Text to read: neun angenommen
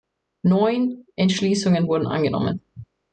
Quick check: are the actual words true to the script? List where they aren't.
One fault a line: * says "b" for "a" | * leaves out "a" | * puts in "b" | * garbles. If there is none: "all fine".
* puts in "entschließungen wurden"